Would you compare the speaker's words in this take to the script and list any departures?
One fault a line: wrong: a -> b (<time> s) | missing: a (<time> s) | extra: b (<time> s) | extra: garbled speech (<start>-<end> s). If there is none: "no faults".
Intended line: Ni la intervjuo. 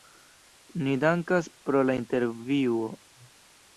extra: dankas pro (1.0 s)